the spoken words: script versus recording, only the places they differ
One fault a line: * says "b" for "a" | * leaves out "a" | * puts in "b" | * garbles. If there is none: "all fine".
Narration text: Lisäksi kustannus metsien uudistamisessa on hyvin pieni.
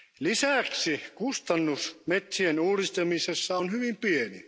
all fine